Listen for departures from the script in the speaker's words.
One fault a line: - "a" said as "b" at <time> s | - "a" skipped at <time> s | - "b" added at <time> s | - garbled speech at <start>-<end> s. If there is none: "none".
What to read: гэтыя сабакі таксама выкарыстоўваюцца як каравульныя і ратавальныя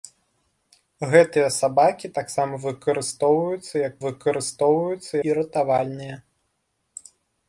- "каравульныя" said as "выкарыстоўваюцца" at 4.0 s